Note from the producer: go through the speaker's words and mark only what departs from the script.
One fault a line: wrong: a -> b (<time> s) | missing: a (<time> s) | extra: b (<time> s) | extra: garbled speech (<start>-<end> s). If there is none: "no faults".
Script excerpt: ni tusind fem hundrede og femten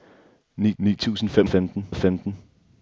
extra: ni (0.8 s)
wrong: hundrede -> femten (1.5 s)